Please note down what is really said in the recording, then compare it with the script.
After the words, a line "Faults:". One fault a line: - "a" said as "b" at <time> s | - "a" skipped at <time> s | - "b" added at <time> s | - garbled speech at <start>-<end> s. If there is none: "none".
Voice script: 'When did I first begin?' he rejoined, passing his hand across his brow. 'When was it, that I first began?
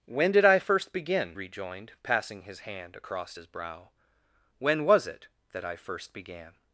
'When did I first begin?' rejoined, passing his hand across his brow. 'When was it, that I first began?
Faults:
- "he" skipped at 1.4 s